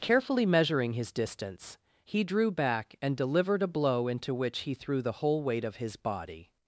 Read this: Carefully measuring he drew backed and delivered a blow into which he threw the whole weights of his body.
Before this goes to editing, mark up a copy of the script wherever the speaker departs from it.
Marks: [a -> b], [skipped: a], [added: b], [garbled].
Carefully measuring [added: his distance] he drew [backed -> back] and delivered a blow into which he threw the whole [weights -> weight] of his body.